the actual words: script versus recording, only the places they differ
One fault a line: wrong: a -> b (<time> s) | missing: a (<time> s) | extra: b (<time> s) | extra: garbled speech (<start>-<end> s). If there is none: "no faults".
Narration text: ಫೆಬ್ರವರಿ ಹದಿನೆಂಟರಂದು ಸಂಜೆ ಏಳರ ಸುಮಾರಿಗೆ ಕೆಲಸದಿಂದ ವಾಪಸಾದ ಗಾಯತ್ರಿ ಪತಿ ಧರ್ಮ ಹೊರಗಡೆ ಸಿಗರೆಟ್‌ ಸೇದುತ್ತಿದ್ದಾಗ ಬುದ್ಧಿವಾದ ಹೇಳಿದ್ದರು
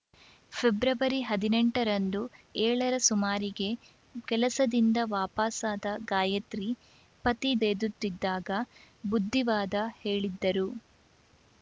missing: ಸಂಜೆ (2.2 s)
missing: ಧರ್ಮ ಹೊರಗಡೆ ಸಿಗರೆಟ್ (7.5 s)